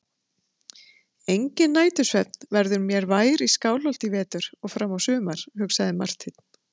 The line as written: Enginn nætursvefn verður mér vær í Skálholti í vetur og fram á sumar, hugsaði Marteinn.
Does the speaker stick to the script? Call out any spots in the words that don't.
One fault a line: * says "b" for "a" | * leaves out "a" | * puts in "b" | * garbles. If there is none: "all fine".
all fine